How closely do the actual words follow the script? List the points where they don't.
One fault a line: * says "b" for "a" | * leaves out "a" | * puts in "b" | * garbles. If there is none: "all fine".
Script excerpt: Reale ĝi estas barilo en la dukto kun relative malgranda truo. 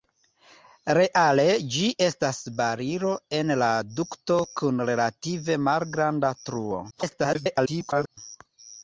* garbles